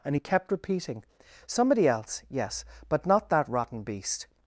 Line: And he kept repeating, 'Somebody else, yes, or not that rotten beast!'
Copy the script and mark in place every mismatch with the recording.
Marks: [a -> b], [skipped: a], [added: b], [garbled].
And he kept repeating, 'Somebody else, yes, [or -> but] not that rotten beast!'